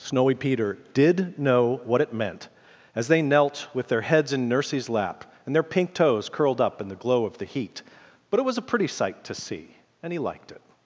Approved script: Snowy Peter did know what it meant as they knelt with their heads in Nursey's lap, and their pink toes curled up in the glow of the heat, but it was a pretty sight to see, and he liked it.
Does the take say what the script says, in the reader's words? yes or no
yes